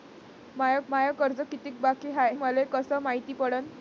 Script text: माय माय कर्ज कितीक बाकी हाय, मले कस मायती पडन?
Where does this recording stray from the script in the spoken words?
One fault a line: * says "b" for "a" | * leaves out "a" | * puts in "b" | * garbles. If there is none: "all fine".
all fine